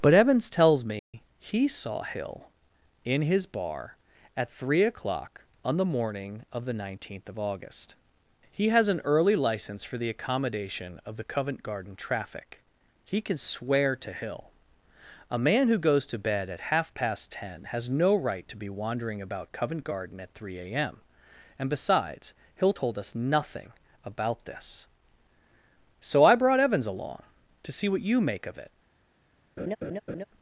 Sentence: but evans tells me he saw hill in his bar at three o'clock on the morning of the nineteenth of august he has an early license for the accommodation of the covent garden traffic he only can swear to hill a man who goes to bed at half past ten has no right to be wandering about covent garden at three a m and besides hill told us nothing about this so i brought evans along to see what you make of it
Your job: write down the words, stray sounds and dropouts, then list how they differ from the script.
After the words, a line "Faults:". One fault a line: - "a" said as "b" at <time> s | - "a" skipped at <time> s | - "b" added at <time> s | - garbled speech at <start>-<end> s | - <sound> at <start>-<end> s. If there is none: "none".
but evans tells me he saw hill in his bar at three o'clock on the morning of the nineteenth of august he has an early license for the accommodation of the covent garden traffic he can swear to hill a man who goes to bed at half past ten has no right to be wandering about covent garden at three a m and besides hill told us nothing about this so i brought evans along to see what you make of it
Faults:
- dropout at 1.0-1.1 s
- "only" skipped at 13.2 s
- laugh at 29.6-30.2 s